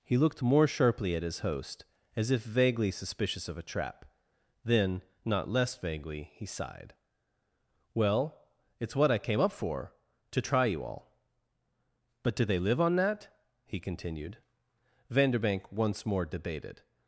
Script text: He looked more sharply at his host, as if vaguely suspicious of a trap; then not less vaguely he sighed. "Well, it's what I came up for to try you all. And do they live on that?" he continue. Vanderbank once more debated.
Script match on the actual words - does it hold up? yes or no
no